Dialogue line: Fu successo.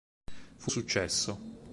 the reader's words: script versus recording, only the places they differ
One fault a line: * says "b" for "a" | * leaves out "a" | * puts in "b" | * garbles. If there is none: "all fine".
all fine